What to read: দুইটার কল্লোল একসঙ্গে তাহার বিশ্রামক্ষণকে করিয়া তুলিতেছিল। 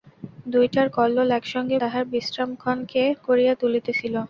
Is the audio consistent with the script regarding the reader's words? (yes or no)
yes